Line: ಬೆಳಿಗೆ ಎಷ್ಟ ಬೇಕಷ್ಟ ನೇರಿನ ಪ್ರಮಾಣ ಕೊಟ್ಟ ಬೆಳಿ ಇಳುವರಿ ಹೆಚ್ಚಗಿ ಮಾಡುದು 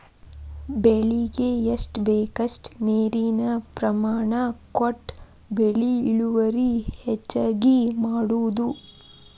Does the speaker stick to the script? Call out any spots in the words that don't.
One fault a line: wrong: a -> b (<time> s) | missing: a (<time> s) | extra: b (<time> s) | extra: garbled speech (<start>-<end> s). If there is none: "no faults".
no faults